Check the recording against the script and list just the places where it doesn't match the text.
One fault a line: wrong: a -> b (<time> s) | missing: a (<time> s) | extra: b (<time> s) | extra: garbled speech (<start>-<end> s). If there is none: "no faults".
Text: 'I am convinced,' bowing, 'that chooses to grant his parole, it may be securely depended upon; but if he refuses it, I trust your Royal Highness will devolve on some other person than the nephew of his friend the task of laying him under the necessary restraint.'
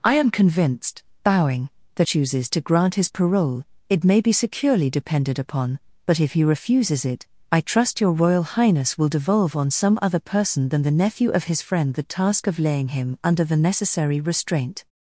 no faults